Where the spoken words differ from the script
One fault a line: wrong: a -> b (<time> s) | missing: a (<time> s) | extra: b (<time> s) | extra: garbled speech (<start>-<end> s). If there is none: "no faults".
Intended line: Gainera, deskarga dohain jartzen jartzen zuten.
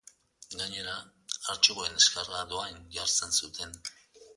extra: artxiboen (1.6 s)
missing: jartzen (3.4 s)